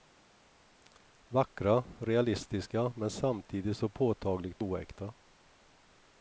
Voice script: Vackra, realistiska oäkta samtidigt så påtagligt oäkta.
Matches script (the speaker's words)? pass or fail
fail